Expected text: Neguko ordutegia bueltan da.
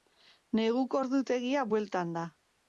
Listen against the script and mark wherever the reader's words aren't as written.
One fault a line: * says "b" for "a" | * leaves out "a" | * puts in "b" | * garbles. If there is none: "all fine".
all fine